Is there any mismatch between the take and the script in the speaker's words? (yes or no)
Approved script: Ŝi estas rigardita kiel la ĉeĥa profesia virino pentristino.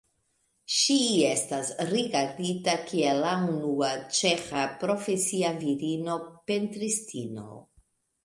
yes